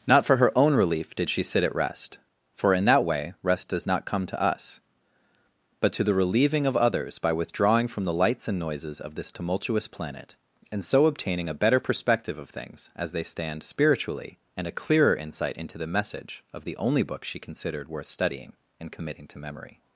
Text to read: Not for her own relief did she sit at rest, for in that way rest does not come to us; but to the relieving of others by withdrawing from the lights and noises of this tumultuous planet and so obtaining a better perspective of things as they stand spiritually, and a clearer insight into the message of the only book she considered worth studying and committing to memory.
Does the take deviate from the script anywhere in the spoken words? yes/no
no